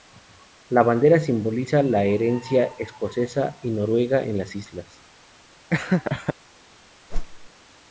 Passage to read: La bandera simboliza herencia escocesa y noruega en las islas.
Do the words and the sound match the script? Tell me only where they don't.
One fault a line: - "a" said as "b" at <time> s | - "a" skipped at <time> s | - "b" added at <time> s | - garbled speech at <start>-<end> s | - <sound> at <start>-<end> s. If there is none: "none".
- "la" added at 1.8 s
- laugh at 5.7-6.3 s
- whoosh at 7.1-7.5 s